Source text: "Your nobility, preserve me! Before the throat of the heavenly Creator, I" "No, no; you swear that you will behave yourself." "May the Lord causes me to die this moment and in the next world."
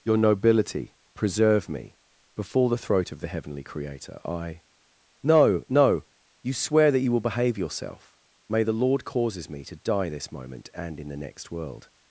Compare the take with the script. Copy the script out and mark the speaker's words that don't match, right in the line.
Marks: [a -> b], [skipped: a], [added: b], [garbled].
"Your nobility, preserve me! Before the throat of the heavenly Creator, I" "No, no; you swear that you will behave yourself." "May the Lord causes me to die this moment and in the next world."